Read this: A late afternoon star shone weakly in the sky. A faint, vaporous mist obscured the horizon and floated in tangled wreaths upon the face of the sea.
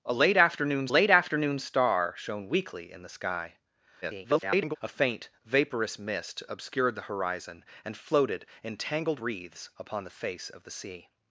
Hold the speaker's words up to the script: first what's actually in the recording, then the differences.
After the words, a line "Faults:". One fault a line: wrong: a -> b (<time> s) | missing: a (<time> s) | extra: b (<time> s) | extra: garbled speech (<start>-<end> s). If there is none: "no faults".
A late afternoon late afternoon star shone weakly in the sky. [garbled] A faint, vaporous mist obscured the horizon and floated in tangled wreaths upon the face of the sea.
Faults:
extra: late afternoon (0.9 s)
extra: garbled speech (4.0-4.8 s)